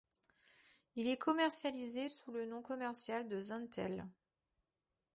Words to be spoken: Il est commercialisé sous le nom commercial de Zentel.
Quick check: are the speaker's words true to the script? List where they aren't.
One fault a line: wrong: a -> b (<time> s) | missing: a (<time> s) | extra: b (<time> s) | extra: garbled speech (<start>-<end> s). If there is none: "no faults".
no faults